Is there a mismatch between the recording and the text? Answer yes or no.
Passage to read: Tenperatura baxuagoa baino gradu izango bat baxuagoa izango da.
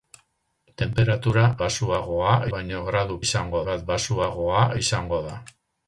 no